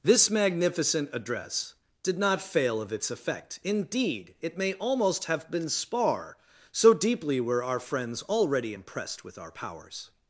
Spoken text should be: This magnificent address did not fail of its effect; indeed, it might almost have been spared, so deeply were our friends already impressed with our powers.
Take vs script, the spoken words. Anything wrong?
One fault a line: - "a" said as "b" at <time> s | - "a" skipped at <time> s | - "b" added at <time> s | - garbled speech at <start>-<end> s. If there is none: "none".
- "might" said as "may" at 4.6 s
- "spared" said as "spar" at 5.7 s